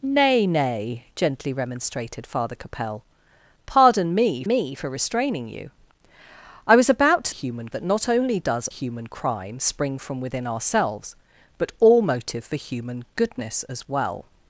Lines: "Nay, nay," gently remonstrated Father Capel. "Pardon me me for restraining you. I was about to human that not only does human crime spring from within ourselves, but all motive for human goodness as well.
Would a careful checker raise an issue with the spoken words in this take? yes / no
no